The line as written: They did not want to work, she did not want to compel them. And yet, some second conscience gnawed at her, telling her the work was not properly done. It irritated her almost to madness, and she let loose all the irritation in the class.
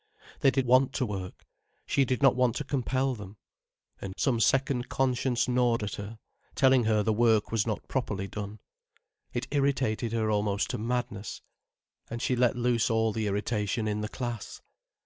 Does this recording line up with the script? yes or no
no